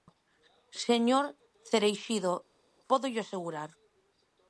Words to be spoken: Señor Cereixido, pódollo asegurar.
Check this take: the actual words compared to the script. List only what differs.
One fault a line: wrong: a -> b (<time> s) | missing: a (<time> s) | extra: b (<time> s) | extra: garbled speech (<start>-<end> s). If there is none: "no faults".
no faults